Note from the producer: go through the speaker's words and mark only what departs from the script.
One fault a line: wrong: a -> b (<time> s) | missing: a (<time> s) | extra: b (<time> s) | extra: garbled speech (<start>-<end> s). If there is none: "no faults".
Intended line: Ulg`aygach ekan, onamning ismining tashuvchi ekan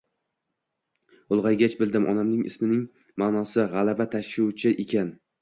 wrong: ekan -> bildim (1.8 s)
extra: ma`nosi g`alaba (3.3 s)